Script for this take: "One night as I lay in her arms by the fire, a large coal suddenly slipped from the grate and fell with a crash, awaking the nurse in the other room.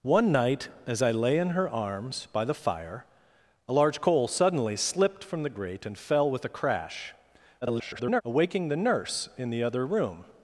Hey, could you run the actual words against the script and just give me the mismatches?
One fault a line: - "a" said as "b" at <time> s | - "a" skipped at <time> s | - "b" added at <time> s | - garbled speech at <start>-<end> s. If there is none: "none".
- garbled speech at 7.6-8.2 s